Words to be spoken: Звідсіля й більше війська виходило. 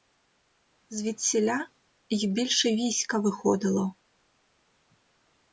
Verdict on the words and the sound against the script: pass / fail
pass